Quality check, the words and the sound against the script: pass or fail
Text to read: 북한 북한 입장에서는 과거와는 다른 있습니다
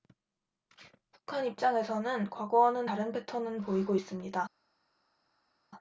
fail